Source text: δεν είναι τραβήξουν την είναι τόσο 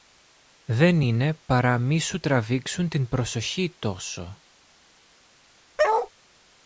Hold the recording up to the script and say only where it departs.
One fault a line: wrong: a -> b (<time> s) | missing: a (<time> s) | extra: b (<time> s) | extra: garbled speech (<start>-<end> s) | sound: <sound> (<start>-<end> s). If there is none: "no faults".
extra: παρά μη σου (1.3 s)
wrong: είναι -> προσοχή (3.1 s)
sound: bark (5.8-6.1 s)